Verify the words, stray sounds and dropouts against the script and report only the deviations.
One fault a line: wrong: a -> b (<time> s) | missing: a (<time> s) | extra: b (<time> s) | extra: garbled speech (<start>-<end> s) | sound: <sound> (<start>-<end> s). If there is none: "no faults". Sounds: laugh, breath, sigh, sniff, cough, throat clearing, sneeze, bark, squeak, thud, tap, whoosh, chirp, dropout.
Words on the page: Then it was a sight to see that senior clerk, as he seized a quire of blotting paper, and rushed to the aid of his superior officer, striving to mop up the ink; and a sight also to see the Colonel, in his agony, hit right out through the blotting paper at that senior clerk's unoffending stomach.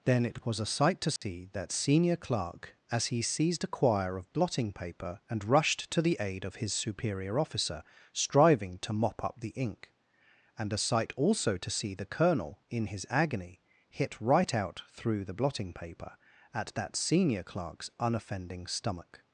sound: dropout (1.2-1.2 s)